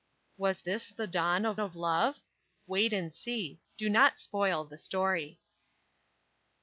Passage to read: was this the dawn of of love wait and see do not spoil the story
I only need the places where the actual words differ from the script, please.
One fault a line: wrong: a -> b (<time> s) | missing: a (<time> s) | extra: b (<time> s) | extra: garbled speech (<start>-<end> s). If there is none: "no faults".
no faults